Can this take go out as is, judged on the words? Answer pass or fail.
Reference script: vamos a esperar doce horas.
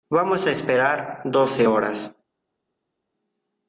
pass